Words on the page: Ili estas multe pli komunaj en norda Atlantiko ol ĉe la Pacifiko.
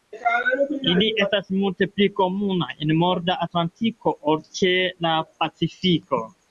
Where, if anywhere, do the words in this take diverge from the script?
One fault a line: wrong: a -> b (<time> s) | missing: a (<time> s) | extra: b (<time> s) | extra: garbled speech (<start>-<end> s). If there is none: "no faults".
no faults